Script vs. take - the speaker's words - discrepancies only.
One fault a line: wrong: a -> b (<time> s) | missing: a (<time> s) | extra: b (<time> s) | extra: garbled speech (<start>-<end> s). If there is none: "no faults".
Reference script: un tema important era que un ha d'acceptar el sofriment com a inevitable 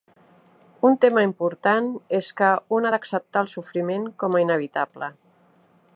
wrong: era -> és (2.2 s)